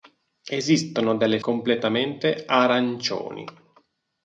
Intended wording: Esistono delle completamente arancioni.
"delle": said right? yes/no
yes